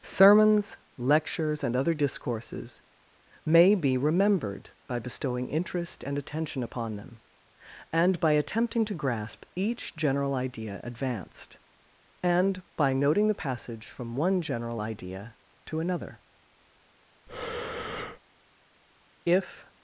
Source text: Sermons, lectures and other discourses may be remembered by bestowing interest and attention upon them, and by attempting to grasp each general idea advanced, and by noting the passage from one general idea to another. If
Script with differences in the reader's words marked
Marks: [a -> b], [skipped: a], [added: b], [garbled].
Sermons, lectures and other discourses may be remembered by bestowing interest and attention upon them, and by attempting to grasp each general idea advanced, and by noting the passage from one general idea to another. If